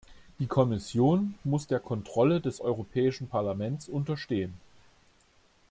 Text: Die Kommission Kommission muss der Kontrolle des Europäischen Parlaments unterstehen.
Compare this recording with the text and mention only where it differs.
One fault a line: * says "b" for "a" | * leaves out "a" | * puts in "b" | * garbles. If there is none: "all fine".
* leaves out "Kommission"